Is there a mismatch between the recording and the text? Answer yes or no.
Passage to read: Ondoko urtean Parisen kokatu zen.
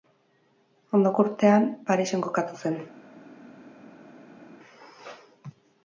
no